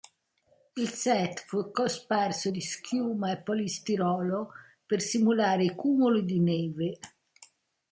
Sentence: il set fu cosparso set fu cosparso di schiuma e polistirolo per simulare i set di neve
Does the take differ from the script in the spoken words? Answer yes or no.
yes